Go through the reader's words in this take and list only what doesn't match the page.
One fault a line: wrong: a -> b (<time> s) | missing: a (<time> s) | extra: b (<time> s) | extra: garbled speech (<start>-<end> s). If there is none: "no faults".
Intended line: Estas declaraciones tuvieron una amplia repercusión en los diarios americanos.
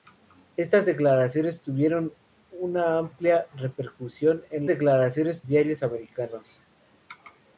wrong: los -> declaraciones (4.7 s)